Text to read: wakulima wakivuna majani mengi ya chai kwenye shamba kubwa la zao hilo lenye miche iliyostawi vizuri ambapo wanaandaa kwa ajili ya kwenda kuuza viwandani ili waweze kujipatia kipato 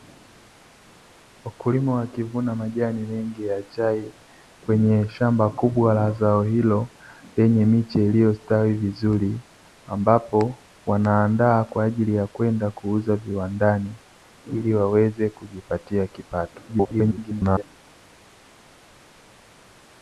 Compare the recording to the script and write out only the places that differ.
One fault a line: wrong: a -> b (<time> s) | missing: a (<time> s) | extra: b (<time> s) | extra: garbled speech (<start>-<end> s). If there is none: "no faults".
extra: garbled speech (16.7-17.6 s)